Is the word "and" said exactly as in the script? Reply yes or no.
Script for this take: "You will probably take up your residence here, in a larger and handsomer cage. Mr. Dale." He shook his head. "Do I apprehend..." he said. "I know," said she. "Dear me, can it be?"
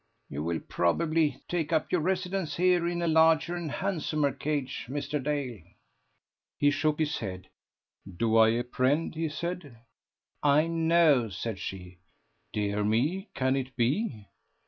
yes